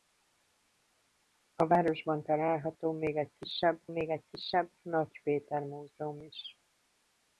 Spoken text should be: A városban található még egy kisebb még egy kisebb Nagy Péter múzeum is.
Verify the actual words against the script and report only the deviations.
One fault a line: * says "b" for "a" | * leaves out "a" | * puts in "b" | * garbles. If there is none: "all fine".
all fine